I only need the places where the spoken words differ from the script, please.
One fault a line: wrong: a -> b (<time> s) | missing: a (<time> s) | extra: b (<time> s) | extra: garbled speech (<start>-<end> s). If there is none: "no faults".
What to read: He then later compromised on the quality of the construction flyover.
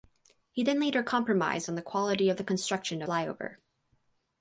no faults